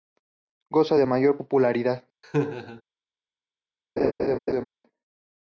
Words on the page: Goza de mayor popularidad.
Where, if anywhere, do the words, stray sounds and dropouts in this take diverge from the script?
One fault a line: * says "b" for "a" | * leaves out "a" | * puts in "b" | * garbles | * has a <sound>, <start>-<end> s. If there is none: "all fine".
* has a laugh, 2.2-2.8 s
* has a laugh, 4.0-4.6 s